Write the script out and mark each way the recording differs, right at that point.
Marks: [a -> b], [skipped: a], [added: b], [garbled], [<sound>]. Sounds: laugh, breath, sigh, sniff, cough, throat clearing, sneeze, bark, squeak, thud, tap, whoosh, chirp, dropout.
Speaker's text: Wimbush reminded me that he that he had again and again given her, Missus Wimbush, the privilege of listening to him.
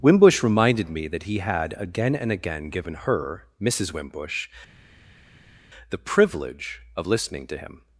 Wimbush reminded me that he [skipped: that he] had again and again given her, Missus Wimbush, the privilege of listening to him.